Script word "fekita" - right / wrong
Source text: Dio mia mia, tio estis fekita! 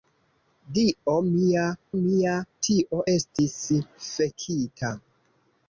right